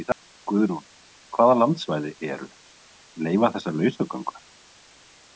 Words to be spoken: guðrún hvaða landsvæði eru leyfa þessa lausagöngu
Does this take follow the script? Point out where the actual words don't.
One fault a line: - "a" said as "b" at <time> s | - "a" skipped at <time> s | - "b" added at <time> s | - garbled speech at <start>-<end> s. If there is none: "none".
none